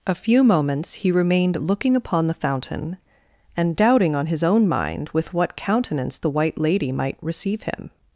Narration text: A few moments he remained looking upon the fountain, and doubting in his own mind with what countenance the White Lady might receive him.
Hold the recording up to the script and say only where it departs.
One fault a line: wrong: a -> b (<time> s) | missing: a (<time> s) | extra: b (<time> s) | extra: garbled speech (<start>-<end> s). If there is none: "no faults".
wrong: in -> on (4.2 s)